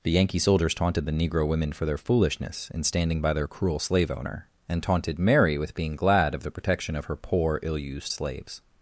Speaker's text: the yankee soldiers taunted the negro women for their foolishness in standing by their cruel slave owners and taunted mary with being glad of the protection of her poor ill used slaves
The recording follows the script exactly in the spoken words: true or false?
false